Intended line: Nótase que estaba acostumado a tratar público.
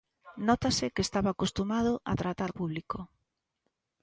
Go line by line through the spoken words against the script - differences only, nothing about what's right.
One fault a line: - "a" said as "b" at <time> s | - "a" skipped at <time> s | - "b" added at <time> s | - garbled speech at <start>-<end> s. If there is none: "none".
none